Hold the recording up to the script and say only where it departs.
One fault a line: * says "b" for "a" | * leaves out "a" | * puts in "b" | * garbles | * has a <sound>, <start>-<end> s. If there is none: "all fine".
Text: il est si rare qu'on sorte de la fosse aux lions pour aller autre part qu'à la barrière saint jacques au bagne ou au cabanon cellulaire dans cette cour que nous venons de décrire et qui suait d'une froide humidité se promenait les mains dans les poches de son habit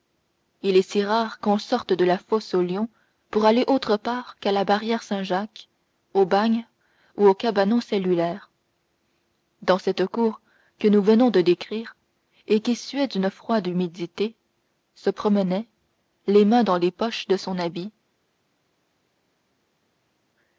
all fine